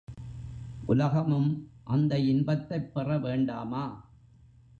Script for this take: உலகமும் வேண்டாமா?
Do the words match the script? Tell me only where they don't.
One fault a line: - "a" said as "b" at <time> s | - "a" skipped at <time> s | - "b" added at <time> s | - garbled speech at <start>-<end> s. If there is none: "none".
- "அந்த இன்பத்தைப் பெற" added at 1.8 s